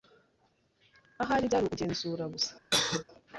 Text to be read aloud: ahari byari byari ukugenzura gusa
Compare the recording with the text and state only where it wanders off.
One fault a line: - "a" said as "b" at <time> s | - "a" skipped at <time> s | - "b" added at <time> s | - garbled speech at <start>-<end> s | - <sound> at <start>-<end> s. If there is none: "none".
- "byari" skipped at 1.6 s
- cough at 2.7-3.0 s